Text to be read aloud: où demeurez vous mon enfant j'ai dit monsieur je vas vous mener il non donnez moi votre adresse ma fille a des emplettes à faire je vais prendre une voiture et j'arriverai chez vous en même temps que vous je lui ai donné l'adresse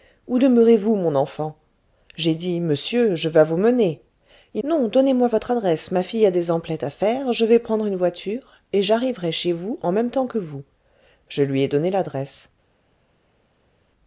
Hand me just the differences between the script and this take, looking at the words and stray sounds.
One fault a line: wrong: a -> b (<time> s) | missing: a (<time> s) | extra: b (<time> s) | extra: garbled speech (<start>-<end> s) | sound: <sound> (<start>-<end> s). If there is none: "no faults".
no faults